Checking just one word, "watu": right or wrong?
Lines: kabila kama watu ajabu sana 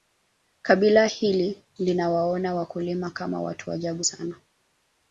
right